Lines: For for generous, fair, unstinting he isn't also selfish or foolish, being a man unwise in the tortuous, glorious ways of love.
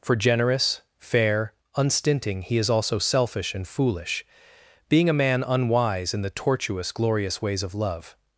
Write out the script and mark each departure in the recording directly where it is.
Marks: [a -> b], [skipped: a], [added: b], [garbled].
For [skipped: for] generous, fair, unstinting he [isn't -> is] also selfish [or -> and] foolish, being a man unwise in the tortuous, glorious ways of love.